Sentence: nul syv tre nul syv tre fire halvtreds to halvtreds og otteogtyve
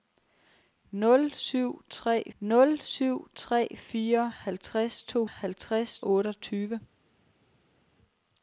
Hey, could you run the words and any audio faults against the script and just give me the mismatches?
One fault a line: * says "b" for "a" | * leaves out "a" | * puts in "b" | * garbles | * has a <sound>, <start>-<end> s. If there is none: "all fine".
all fine